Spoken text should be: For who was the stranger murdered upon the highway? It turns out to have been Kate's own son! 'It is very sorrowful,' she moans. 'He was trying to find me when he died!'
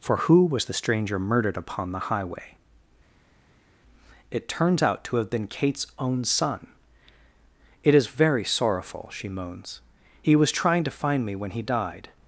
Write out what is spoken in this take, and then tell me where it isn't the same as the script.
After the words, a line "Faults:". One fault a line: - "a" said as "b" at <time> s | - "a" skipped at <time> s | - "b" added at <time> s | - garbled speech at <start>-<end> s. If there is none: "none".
For who was the stranger murdered upon the highway? It turns out to have been Kate's own son! 'It is very sorrowful,' she moans. 'He was trying to find me when he died!'
Faults:
none